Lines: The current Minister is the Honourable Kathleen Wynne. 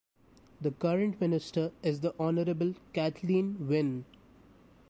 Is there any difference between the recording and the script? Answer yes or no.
no